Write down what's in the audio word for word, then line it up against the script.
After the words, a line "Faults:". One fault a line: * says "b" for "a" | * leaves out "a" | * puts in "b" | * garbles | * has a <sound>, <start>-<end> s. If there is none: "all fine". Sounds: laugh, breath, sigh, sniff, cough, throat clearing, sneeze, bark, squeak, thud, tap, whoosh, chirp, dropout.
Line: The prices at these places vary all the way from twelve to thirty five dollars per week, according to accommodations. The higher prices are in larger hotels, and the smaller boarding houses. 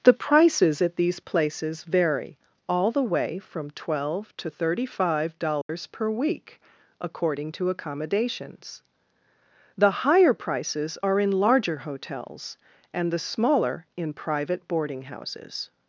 The prices at these places vary all the way from twelve to thirty five dollars per week, according to accommodations. The higher prices are in larger hotels, and the smaller in private boarding houses.
Faults:
* has a dropout, 5.6-5.7 s
* puts in "in private"